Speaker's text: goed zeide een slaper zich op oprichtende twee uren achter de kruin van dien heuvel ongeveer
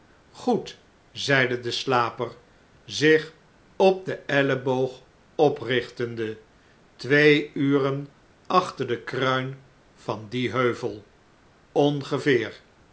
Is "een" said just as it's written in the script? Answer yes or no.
no